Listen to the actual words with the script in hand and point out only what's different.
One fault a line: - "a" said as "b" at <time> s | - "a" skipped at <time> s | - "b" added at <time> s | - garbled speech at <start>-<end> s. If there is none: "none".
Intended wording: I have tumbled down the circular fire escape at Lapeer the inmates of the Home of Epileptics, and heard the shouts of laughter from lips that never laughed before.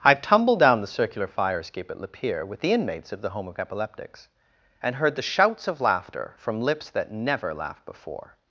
- "with" added at 2.4 s